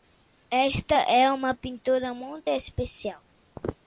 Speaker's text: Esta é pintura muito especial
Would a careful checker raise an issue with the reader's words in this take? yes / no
yes